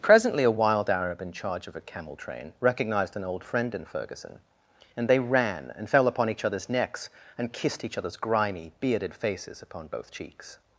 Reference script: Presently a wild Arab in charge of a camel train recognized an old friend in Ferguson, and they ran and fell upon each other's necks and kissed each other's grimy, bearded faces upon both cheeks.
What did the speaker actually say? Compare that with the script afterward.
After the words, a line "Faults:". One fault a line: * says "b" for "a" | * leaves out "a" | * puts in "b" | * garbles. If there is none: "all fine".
Presently a wild Arab in charge of a camel train recognized an old friend in Ferguson, and they ran and fell upon each other's necks and kissed each other's grimy, bearded faces upon both cheeks.
Faults:
all fine